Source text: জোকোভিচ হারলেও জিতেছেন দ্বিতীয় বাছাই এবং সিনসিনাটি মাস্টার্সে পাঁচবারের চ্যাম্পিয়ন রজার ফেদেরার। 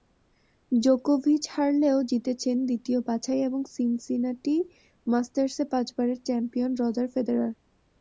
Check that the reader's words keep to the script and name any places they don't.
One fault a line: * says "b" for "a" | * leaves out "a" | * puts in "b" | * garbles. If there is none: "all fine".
all fine